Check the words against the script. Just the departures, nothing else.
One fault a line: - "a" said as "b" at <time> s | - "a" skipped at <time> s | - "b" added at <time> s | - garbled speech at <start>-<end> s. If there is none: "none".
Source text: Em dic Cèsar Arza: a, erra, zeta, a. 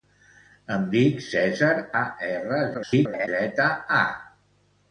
- "Arza" skipped at 1.7 s
- garbled speech at 2.7-3.3 s